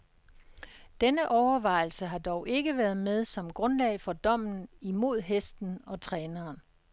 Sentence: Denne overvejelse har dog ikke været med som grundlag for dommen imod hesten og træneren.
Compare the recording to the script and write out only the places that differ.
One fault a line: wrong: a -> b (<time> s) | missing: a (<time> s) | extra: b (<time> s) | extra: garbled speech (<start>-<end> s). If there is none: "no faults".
no faults